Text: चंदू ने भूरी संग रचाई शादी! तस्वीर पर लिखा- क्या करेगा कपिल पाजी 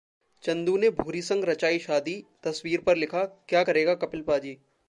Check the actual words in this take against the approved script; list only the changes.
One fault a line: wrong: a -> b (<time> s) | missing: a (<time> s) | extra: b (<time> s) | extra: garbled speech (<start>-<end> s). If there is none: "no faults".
no faults